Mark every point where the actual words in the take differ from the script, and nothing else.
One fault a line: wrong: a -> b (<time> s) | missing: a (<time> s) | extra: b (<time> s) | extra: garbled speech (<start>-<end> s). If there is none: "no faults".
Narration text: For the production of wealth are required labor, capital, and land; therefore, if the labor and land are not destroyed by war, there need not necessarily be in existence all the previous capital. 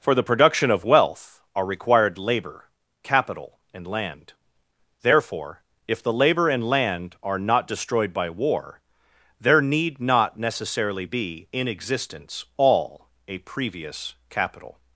wrong: the -> a (13.3 s)